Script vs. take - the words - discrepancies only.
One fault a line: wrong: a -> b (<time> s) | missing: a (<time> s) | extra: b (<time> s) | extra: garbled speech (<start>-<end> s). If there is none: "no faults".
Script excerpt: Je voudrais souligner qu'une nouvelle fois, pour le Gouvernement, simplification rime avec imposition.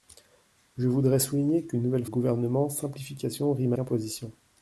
missing: fois pour le (2.0 s)
missing: avec (3.7 s)